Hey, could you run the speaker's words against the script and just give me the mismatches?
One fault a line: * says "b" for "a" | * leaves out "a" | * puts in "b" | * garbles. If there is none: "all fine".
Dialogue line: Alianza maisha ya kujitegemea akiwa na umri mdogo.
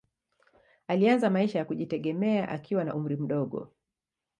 all fine